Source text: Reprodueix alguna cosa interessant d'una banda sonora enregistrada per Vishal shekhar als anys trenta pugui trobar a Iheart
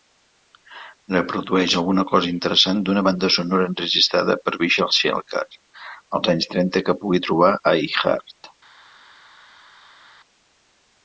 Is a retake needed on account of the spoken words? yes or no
yes